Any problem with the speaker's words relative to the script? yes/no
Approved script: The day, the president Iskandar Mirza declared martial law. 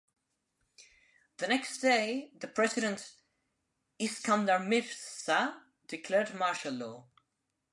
yes